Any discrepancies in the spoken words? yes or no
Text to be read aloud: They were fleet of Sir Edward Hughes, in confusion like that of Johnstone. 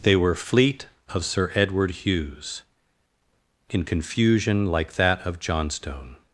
no